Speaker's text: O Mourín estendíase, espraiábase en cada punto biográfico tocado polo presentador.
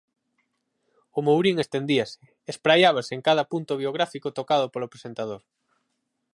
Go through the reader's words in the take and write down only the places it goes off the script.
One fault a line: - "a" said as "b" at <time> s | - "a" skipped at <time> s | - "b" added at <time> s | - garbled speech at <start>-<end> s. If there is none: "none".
none